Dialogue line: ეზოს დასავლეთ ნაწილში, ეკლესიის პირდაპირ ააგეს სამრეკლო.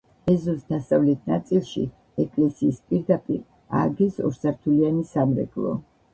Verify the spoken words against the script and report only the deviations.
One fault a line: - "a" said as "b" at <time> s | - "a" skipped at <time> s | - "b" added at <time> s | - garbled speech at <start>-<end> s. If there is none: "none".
- "ორსართულიანი" added at 4.3 s